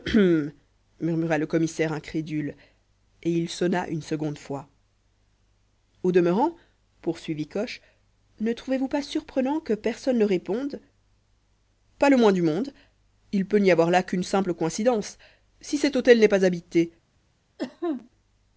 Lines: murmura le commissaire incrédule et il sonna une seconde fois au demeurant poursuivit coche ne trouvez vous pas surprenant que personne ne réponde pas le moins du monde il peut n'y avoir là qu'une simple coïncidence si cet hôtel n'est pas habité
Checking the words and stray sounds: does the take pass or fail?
fail